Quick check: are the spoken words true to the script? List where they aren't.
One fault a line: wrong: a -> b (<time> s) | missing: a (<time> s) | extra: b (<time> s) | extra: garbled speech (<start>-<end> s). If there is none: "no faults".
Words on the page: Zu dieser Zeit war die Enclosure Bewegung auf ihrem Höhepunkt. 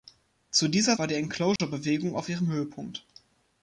missing: Zeit (1.0 s)